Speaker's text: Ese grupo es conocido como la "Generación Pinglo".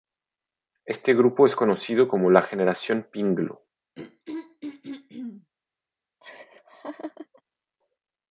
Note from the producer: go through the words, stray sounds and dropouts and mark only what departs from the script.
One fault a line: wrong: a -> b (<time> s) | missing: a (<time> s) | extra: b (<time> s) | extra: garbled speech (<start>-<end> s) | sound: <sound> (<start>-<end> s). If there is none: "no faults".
wrong: Ese -> Este (0.9 s)
sound: throat clearing (4.0-5.5 s)
sound: laugh (6.2-7.4 s)